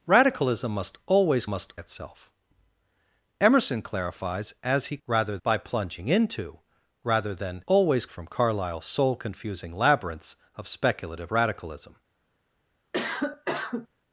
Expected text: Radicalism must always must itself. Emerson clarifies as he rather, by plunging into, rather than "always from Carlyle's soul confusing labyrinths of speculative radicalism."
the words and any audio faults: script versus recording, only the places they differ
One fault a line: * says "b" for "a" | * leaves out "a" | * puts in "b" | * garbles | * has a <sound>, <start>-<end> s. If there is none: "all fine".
* has a cough, 12.9-13.9 s